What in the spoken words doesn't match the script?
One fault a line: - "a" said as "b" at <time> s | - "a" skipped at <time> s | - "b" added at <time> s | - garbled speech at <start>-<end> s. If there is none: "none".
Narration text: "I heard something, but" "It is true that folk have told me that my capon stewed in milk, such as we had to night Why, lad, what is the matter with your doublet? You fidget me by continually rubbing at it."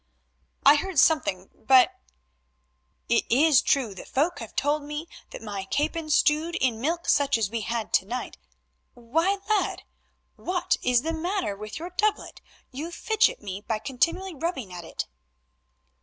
none